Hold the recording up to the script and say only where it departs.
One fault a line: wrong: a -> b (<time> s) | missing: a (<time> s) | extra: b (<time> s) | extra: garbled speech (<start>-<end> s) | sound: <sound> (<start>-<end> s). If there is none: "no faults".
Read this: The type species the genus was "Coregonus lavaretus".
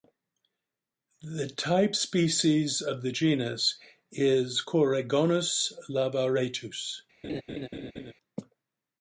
extra: of (2.8 s)
wrong: was -> is (4.1 s)
sound: laugh (7.2-8.1 s)